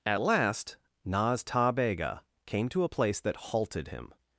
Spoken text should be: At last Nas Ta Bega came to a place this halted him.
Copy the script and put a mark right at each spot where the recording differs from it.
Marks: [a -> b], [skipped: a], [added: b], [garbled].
At last Nas Ta Bega came to a place [this -> that] halted him.